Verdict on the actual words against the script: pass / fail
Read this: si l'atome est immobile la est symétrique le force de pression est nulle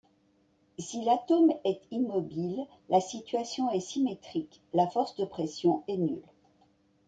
fail